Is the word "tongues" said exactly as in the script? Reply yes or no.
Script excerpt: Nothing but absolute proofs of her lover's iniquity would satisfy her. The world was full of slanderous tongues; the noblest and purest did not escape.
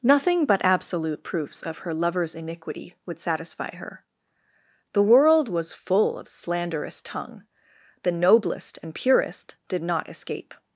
no